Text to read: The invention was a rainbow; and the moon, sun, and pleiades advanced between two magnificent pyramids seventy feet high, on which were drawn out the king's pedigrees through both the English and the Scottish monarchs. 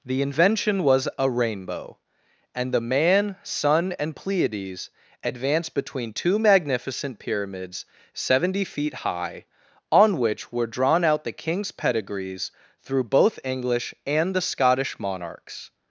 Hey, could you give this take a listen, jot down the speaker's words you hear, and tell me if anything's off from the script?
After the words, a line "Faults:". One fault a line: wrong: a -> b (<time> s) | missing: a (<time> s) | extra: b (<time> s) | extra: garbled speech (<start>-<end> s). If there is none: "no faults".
The invention was a rainbow; and the man, sun, and pleiades advanced between two magnificent pyramids seventy feet high, on which were drawn out the king's pedigrees through both English and the Scottish monarchs.
Faults:
wrong: moon -> man (2.8 s)
missing: the (13.4 s)